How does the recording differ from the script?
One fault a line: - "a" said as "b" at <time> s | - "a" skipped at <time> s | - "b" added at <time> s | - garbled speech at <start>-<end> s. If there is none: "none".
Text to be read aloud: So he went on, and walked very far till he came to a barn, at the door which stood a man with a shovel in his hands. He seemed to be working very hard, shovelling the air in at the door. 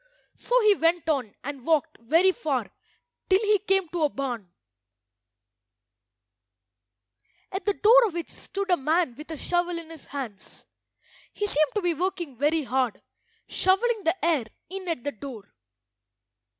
none